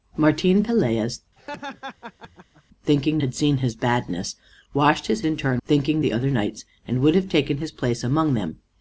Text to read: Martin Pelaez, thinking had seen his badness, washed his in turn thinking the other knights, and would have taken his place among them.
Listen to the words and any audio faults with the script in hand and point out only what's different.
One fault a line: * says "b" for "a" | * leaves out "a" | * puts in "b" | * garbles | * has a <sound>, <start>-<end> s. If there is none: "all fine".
* has a laugh, 1.4-2.6 s